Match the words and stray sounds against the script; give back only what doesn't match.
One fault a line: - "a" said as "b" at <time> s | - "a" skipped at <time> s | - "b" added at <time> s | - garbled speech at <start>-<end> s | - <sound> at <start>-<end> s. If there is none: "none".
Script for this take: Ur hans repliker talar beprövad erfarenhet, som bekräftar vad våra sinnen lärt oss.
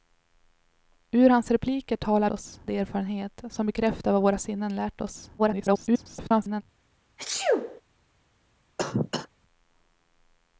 - "beprövad" said as "oss" at 2.3 s
- garbled speech at 5.4-6.6 s
- sneeze at 7.2-7.8 s
- cough at 8.8-9.3 s